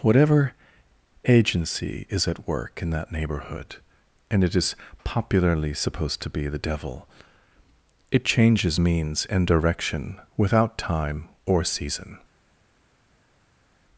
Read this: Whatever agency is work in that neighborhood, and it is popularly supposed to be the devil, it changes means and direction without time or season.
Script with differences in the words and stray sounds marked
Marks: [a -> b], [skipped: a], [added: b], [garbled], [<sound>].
Whatever agency is [added: at] work in that neighborhood, and it is popularly supposed to be the devil, it changes means and direction without time or season.